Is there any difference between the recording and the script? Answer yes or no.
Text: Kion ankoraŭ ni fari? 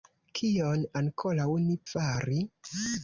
no